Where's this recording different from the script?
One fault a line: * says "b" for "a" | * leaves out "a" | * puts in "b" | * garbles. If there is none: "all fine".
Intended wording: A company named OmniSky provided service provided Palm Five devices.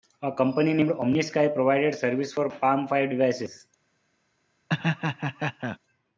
* says "for" for "provided"